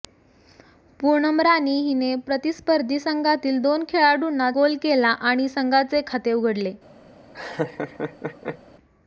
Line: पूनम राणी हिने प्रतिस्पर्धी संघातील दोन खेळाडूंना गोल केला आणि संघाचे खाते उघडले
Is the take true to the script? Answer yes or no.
yes